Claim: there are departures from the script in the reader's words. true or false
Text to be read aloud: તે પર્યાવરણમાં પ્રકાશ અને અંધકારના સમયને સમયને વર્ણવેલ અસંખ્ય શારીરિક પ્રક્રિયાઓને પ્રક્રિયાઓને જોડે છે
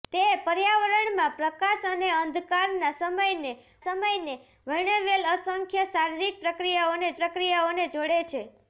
false